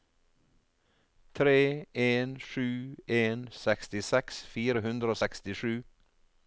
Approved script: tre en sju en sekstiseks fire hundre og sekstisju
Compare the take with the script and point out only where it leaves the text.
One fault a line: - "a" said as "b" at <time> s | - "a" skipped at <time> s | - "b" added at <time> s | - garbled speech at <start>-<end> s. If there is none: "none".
none